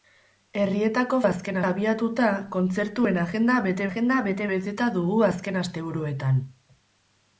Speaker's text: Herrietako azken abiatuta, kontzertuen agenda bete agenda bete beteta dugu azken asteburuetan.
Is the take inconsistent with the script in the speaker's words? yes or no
no